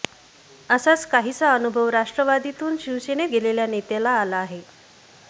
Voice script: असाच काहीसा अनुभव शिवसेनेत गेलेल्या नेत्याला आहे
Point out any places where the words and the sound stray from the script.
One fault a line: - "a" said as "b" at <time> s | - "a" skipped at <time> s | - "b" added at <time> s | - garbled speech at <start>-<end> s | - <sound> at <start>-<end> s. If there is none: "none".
- "राष्ट्रवादीतून" added at 1.9 s
- "आला" added at 4.1 s